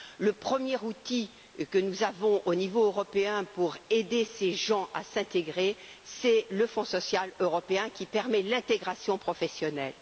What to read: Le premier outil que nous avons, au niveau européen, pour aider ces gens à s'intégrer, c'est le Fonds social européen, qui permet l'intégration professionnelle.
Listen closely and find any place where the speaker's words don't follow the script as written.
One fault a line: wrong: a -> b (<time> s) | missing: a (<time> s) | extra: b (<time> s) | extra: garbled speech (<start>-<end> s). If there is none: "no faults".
no faults